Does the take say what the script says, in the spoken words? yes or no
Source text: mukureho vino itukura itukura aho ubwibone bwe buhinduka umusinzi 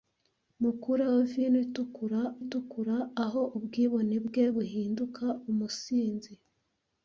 yes